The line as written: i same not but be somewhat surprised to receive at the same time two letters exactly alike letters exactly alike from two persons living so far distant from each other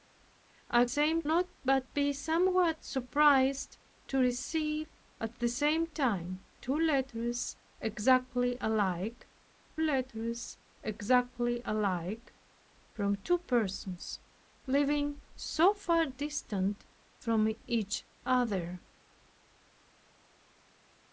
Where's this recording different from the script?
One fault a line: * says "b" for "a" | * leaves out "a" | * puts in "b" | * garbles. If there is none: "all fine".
all fine